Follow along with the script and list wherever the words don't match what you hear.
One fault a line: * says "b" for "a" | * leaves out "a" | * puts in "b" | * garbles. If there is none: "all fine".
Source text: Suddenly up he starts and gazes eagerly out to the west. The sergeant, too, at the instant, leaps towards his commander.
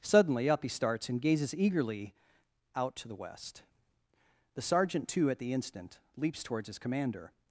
all fine